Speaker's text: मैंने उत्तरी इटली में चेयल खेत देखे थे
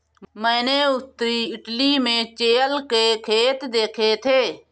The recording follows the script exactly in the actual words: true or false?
false